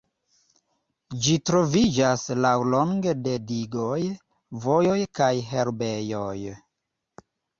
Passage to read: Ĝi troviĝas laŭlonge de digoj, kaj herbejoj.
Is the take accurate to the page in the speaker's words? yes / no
no